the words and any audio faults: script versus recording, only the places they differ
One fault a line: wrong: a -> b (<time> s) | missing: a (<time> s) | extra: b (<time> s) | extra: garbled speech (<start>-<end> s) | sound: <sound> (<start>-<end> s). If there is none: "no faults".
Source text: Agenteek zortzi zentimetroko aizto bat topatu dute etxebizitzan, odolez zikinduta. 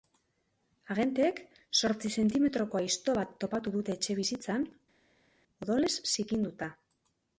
no faults